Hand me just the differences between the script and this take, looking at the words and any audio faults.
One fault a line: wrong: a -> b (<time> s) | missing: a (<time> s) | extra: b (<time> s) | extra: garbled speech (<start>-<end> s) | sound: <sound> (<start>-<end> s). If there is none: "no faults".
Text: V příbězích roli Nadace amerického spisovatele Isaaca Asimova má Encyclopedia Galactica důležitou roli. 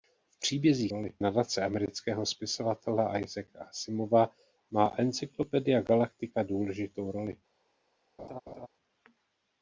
sound: laugh (8.2-8.7 s)